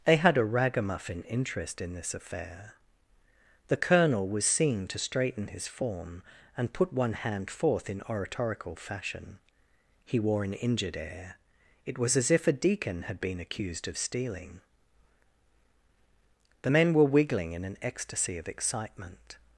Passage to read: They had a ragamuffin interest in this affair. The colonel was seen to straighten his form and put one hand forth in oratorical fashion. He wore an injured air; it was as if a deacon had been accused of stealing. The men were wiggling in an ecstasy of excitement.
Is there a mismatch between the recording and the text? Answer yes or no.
no